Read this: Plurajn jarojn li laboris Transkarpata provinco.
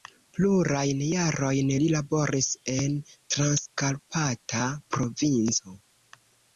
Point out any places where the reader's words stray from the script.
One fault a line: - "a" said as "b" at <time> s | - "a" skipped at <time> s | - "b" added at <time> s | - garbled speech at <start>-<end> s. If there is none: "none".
- "en" added at 2.8 s